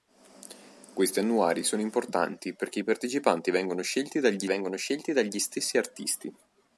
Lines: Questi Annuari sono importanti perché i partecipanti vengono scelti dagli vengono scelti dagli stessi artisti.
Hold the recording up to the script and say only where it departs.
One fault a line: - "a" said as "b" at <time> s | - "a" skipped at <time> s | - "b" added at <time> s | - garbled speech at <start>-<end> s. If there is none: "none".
none